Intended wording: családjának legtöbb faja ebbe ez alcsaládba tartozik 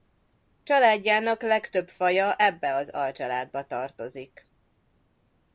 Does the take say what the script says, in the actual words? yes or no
no